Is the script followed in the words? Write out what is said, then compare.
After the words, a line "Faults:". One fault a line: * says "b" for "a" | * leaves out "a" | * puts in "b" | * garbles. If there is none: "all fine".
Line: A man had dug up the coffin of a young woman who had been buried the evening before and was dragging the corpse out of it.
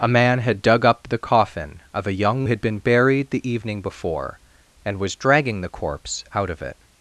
A man had dug up the coffin of a young had been buried the evening before and was dragging the corpse out of it.
Faults:
* leaves out "woman who"